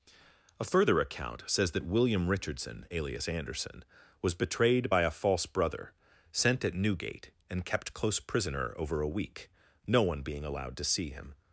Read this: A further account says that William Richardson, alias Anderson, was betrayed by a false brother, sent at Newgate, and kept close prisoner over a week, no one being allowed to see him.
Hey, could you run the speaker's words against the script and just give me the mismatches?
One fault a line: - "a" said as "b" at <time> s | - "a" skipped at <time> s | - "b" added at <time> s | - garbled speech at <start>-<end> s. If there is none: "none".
none